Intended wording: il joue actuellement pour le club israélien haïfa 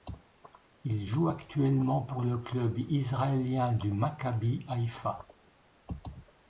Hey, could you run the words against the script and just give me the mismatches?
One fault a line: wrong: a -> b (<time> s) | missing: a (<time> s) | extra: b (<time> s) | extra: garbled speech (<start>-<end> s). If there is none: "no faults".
extra: du maccabi (3.7 s)